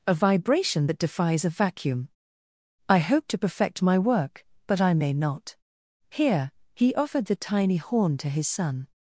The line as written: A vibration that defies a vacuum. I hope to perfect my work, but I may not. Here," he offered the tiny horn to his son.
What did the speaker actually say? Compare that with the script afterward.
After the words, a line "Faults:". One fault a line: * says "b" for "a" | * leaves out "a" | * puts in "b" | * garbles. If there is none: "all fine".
A vibration that defies a vacuum. I hope to perfect my work, but I may not. Here," he offered the tiny horn to his son.
Faults:
all fine